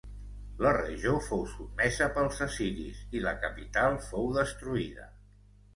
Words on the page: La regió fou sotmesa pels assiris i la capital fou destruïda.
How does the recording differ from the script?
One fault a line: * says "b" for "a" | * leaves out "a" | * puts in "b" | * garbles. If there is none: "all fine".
all fine